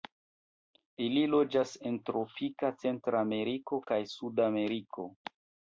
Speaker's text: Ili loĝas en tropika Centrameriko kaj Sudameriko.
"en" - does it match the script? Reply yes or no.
yes